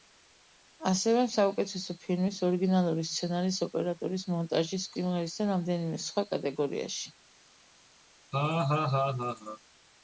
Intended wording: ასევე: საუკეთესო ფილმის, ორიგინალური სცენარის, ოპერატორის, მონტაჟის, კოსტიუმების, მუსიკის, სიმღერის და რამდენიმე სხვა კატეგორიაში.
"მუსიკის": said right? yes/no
no